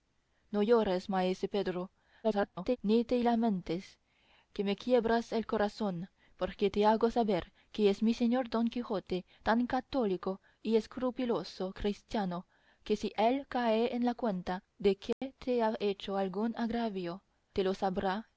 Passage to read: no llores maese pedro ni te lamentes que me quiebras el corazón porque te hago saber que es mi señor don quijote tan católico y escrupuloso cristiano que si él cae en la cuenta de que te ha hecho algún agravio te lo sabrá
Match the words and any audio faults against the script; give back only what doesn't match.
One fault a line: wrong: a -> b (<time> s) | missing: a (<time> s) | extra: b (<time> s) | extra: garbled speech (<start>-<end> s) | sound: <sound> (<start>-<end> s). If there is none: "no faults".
extra: garbled speech (2.2-2.8 s)
sound: dropout (15.1-15.2 s)